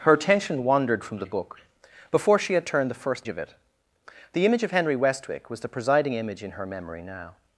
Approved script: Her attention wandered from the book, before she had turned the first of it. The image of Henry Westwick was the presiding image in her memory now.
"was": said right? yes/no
yes